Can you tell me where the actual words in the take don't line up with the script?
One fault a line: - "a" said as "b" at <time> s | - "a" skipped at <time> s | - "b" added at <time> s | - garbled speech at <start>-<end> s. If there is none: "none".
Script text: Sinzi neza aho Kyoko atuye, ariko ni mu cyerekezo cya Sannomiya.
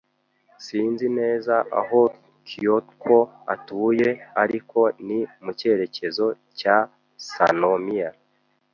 none